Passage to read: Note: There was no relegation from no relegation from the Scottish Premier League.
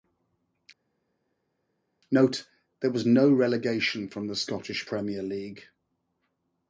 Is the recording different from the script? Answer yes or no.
yes